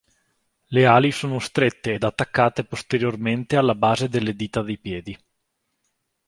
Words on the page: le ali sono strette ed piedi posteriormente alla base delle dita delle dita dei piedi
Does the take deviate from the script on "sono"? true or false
false